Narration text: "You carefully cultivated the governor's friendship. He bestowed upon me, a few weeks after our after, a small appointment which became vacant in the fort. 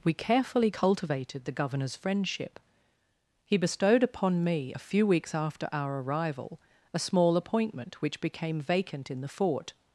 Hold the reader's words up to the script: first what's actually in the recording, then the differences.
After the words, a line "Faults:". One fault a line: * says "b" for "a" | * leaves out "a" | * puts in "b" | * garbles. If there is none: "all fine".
"We carefully cultivated the governor's friendship. He bestowed upon me, a few weeks after our arrival, a small appointment which became vacant in the fort.
Faults:
* says "We" for "You"
* says "arrival" for "after"